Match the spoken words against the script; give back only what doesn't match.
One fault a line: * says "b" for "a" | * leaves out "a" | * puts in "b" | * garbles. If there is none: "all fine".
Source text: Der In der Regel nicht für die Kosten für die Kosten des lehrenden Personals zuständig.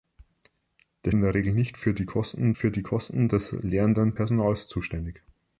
all fine